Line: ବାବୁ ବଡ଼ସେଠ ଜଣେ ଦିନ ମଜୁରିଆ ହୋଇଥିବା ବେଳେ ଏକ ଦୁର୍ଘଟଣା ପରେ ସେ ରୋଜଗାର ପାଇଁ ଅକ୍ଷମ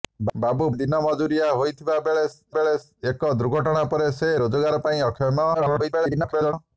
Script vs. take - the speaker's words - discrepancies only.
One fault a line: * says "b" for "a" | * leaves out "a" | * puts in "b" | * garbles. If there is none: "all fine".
* leaves out "ବଡ଼ସେଠ ଜଣେ"
* puts in "ବେଳେ"
* garbles